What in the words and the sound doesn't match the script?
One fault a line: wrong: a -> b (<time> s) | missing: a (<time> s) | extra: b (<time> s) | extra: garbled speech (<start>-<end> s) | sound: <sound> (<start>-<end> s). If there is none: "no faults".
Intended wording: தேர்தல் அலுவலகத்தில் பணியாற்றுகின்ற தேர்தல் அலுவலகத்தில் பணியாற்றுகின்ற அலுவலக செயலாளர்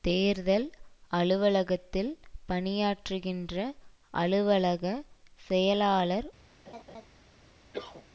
missing: தேர்தல் அலுவலகத்தில் பணியாற்றுகின்ற (3.5 s)
sound: laugh (6.7-7.1 s)
sound: cough (7.7-8.1 s)